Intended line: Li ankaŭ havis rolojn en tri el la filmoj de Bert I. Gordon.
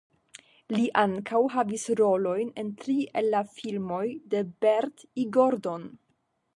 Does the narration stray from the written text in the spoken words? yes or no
no